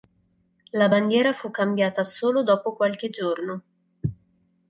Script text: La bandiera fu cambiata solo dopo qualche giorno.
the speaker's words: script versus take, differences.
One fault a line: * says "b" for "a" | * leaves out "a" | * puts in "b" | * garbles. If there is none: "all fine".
all fine